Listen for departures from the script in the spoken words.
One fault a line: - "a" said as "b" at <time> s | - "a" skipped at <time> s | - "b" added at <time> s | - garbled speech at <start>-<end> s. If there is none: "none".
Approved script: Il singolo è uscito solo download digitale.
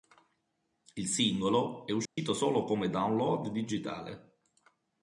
- "come" added at 2.6 s